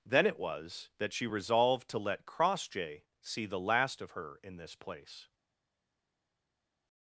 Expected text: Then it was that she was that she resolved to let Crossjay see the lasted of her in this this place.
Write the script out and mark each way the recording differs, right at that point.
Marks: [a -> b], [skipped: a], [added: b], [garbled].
Then it was that she [skipped: was that she] resolved to let Crossjay see the [lasted -> last] of her in this [skipped: this] place.